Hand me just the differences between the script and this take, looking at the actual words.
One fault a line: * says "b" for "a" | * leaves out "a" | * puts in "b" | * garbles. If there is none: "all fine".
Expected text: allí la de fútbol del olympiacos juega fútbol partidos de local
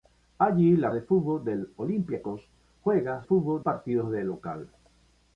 all fine